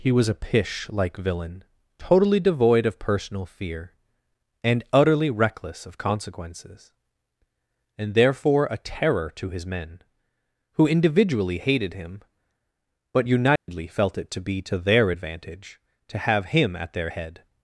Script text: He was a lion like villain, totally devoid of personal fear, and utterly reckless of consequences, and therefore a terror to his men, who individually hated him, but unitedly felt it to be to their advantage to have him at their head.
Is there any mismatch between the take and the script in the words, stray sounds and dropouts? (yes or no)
yes